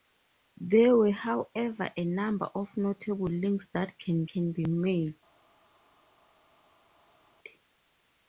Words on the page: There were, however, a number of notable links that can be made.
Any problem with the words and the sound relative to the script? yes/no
yes